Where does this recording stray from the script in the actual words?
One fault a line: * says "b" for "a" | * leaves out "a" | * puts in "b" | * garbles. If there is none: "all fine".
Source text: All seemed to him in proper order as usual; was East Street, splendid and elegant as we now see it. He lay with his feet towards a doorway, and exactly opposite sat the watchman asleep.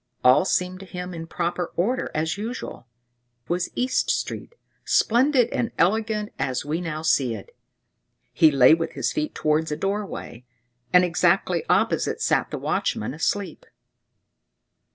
all fine